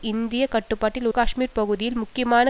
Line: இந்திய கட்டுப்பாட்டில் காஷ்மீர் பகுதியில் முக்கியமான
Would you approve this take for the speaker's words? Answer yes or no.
yes